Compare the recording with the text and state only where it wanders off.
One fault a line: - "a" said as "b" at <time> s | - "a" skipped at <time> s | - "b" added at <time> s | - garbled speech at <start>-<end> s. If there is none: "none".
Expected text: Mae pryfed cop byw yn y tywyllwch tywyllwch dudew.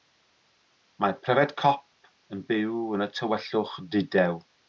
- "yn" added at 2.4 s
- "tywyllwch" skipped at 3.8 s